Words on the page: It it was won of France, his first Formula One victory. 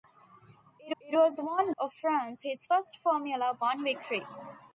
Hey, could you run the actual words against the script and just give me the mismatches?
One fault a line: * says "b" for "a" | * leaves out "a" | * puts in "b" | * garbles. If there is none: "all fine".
all fine